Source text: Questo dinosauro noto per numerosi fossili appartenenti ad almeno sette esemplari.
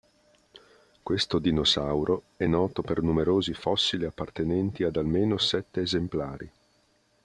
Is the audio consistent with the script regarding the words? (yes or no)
no